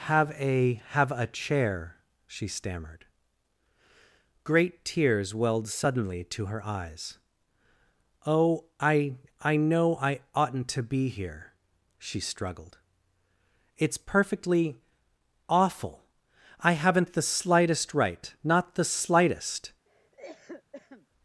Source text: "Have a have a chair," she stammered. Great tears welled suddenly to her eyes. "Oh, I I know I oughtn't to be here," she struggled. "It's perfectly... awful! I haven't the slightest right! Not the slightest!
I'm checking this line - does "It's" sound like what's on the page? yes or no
yes